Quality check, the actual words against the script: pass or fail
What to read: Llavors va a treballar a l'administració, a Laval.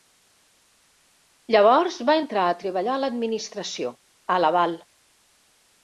fail